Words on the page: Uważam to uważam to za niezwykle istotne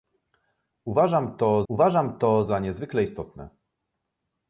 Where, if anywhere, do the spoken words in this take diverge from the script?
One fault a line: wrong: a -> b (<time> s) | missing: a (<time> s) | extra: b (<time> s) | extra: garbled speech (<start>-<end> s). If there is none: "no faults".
no faults